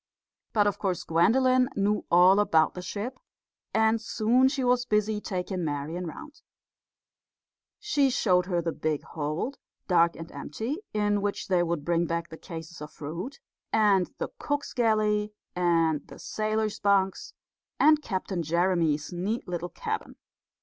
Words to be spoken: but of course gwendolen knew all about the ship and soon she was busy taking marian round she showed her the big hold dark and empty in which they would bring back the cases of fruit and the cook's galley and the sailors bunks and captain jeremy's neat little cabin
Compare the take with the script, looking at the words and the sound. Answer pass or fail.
pass